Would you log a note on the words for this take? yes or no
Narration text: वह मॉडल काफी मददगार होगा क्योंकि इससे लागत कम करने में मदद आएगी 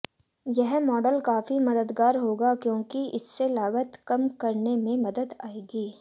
yes